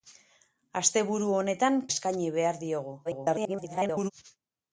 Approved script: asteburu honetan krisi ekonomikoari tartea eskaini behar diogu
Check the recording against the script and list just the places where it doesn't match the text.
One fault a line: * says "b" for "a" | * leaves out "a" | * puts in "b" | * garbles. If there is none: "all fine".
* leaves out "krisi ekonomikoari tartea"
* garbles